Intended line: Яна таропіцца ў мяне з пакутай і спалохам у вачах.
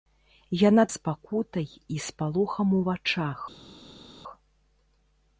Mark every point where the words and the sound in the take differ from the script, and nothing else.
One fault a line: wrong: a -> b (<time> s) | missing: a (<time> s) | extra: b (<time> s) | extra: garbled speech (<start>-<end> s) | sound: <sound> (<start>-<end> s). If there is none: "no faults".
missing: таропіцца ў мяне (0.8 s)